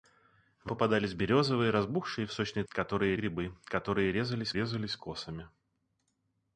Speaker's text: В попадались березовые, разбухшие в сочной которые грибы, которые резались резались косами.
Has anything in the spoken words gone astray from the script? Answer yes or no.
no